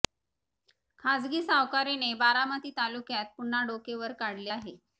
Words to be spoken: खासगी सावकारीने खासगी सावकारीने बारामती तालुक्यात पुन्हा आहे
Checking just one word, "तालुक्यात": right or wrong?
right